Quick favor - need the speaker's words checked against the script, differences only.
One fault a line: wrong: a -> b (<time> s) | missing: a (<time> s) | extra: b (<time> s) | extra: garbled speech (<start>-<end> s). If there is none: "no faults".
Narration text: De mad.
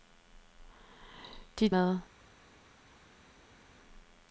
no faults